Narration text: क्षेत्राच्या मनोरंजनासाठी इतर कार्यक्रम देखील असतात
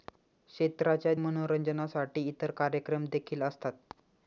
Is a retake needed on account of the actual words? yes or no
no